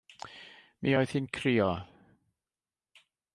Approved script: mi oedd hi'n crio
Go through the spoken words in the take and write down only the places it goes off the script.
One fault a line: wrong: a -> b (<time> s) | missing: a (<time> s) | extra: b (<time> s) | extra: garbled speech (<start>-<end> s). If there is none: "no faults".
no faults